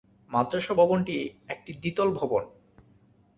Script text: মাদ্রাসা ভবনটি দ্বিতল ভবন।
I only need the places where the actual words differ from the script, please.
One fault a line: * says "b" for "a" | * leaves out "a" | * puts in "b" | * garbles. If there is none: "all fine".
* puts in "একটি"